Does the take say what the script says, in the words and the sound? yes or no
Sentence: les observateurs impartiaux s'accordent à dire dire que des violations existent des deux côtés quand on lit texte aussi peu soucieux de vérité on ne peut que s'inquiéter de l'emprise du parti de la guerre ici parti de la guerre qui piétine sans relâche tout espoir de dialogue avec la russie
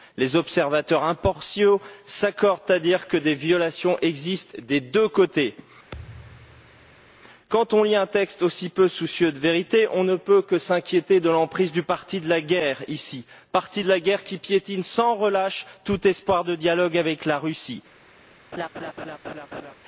no